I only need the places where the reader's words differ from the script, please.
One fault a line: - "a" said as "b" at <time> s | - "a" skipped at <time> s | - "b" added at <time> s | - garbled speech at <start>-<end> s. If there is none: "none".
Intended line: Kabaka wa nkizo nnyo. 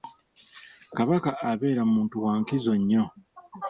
- "abeera muntu" added at 1.5 s